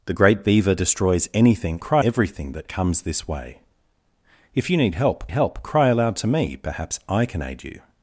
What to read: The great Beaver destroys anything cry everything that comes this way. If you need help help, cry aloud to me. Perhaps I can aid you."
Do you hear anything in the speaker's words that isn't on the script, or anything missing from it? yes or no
no